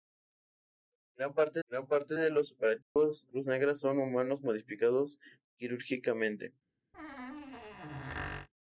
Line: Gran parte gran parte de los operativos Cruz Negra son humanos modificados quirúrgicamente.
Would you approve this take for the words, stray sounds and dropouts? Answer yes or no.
no